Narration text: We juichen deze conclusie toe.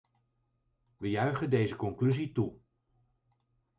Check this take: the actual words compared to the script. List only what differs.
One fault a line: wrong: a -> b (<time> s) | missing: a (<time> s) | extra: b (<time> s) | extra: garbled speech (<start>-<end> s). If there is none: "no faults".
no faults